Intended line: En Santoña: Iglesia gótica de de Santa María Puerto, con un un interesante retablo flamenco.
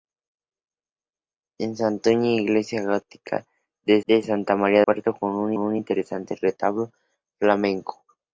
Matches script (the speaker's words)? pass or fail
pass